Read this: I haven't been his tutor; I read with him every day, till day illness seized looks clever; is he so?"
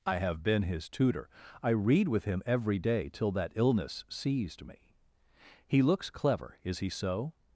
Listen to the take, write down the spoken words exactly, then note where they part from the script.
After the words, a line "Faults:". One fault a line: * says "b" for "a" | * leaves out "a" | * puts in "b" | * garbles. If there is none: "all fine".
I have been his tutor; I read with him every day, till that illness seized me." "He looks clever; is he so?"
Faults:
* says "have" for "haven't"
* says "that" for "day"
* puts in "me He"